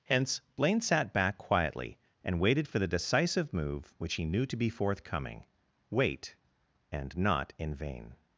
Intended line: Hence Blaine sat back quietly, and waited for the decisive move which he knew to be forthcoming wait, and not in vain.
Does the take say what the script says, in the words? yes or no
yes